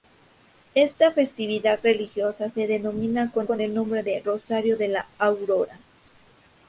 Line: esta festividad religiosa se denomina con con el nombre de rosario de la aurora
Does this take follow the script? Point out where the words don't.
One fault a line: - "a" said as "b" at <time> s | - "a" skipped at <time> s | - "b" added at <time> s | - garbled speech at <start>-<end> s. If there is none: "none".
none